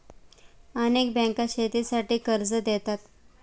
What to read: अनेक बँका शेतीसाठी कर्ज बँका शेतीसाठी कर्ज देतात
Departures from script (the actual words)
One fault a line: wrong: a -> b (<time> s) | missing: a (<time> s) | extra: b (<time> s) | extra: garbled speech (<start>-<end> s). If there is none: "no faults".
missing: बँका शेतीसाठी कर्ज (2.5 s)